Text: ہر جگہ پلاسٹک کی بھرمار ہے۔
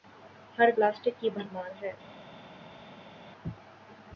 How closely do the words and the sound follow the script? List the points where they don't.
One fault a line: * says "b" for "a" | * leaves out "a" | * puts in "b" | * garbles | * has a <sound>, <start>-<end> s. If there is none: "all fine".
* leaves out "جگہ"